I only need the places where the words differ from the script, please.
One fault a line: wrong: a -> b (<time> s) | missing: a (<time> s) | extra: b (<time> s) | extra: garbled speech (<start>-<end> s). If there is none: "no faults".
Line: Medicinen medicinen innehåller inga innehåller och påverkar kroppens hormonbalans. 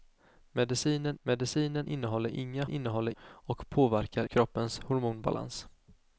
no faults